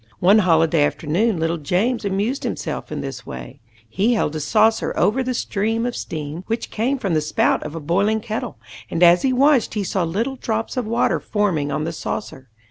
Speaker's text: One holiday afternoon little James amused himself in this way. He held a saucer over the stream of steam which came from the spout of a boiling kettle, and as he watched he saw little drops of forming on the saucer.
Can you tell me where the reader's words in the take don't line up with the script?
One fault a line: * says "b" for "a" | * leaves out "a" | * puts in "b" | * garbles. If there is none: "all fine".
* puts in "water"